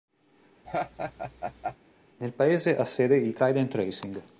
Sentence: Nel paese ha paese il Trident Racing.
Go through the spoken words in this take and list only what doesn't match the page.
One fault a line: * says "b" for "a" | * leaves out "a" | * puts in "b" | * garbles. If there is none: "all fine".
* says "sede" for "paese"